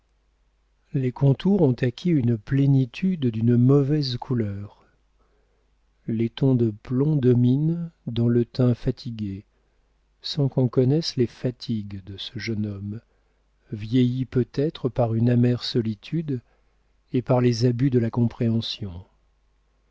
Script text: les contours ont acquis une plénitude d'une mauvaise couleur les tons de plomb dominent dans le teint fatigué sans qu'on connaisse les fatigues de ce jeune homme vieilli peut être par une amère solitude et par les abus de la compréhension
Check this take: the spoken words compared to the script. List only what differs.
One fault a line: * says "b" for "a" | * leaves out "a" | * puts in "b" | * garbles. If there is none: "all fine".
all fine